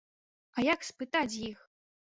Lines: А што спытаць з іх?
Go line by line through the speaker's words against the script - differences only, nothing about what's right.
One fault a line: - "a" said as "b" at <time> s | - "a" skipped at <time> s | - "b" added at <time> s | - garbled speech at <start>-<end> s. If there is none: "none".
- "што" said as "як" at 0.7 s